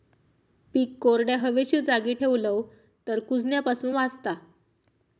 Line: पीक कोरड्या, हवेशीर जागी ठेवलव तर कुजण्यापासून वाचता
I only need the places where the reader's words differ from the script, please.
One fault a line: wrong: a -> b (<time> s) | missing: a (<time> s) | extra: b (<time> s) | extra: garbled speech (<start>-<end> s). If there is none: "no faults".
no faults